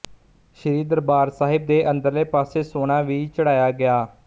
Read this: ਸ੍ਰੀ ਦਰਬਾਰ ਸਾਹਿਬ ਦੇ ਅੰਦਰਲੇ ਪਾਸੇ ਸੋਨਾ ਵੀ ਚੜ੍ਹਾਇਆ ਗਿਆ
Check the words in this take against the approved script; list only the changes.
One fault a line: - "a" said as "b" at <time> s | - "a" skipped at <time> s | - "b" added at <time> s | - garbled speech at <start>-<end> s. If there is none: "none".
none